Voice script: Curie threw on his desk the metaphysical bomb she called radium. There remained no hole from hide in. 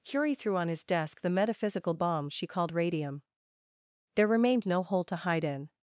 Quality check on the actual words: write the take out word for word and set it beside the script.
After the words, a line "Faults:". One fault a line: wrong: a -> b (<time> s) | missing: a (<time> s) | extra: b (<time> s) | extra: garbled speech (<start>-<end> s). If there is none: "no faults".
Curie threw on his desk the metaphysical bomb she called radium. There remained no hole to hide in.
Faults:
wrong: from -> to (5.1 s)